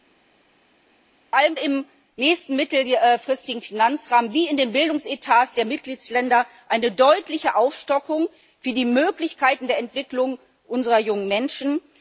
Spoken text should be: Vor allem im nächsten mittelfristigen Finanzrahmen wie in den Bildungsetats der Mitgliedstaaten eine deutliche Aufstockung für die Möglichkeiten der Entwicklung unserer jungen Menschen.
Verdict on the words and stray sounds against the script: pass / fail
pass